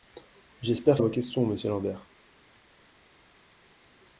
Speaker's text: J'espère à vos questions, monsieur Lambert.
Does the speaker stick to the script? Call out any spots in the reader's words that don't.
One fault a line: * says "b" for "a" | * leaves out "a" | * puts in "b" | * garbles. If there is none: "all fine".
all fine